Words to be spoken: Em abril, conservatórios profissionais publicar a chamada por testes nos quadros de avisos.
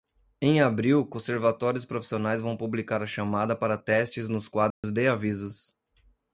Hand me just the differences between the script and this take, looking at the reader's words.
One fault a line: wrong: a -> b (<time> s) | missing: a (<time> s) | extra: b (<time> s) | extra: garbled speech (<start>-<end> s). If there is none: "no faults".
extra: vão (2.4 s)
wrong: por -> para (3.5 s)